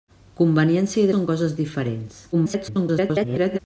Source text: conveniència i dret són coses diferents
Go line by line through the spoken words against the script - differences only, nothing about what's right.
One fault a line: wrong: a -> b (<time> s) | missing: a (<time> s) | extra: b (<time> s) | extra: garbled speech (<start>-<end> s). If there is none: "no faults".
missing: dret (1.1 s)
extra: garbled speech (2.3-3.6 s)